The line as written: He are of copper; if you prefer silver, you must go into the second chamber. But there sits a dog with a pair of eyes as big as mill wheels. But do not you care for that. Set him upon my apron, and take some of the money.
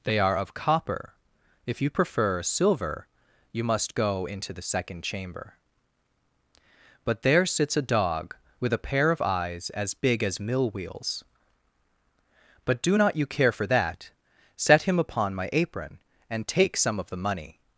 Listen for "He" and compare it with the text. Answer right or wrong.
wrong